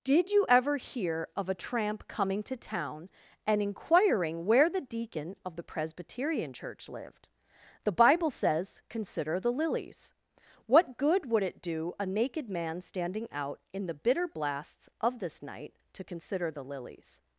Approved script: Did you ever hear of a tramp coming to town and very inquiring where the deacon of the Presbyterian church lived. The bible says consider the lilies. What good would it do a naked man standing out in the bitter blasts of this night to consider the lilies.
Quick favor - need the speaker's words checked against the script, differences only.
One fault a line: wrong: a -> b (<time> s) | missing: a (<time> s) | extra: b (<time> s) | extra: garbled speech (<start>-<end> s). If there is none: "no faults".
missing: very (3.6 s)